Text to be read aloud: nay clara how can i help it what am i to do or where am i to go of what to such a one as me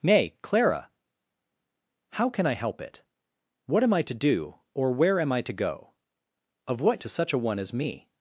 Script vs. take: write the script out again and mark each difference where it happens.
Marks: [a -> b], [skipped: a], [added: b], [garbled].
nay clara how can i help it what am i to do or where am i to go of what to such a one as me